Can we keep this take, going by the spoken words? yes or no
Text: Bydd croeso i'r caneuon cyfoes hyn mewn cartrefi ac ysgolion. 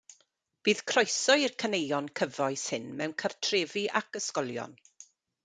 yes